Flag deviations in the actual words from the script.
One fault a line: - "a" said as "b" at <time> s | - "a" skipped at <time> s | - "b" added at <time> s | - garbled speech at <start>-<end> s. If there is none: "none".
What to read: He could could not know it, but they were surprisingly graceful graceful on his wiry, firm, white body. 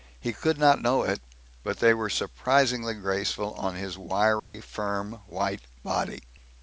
- "could" skipped at 0.6 s
- "graceful" skipped at 3.5 s